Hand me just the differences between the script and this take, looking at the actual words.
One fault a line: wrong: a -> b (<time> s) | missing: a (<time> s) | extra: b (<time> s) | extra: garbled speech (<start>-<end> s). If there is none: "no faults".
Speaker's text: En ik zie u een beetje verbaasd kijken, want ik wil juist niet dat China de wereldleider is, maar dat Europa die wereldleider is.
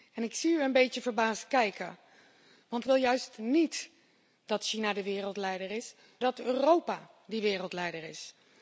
missing: ik (2.9 s)
missing: maar (5.9 s)